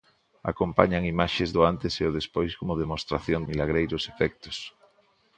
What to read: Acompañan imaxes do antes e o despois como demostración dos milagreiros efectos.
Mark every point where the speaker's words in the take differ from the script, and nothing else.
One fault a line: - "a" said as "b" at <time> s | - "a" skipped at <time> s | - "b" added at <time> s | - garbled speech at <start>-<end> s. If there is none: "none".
- "dos" skipped at 3.4 s